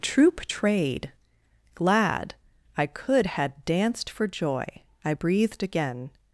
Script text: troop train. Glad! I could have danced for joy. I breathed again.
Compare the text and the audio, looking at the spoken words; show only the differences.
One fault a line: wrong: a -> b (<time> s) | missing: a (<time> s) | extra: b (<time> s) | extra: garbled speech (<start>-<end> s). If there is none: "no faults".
wrong: train -> trade (0.5 s)
wrong: have -> had (3.2 s)